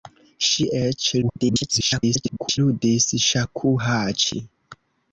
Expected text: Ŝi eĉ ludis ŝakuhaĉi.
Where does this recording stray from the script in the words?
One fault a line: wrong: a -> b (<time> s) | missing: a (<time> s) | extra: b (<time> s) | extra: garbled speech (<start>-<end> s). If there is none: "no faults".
extra: garbled speech (1.2-2.6 s)